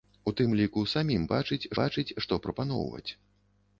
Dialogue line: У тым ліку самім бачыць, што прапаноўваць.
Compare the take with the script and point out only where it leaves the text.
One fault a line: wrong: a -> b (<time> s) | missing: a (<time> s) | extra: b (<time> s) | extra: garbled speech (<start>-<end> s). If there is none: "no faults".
extra: бачыць (1.8 s)